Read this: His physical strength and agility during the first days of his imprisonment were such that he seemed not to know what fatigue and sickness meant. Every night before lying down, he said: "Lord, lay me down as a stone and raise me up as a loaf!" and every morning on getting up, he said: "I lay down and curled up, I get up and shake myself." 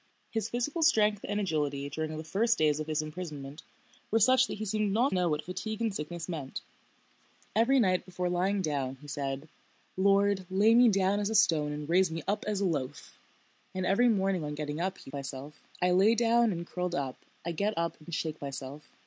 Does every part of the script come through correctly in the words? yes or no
no